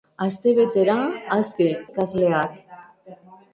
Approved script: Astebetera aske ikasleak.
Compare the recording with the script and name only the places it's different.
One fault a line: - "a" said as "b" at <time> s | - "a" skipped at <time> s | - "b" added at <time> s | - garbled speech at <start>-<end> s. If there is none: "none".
none